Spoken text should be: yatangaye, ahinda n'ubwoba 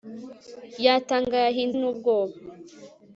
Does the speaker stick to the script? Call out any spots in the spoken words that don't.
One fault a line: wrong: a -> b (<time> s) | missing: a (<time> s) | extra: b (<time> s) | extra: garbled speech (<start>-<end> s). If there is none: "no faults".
no faults